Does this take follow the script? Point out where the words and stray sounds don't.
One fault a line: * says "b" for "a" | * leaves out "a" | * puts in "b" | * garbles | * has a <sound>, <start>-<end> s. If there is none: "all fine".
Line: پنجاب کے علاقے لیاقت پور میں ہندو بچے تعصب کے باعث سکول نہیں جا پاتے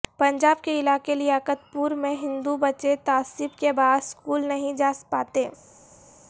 all fine